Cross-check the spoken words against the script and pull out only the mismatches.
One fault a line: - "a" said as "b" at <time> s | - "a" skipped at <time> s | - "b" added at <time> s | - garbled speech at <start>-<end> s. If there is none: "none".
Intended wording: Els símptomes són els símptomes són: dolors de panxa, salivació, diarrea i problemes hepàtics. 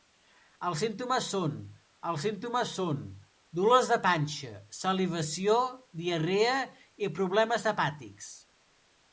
none